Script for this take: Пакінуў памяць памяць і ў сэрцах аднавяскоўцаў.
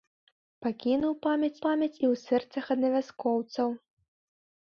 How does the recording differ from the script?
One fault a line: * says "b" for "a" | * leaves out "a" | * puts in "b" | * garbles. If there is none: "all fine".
all fine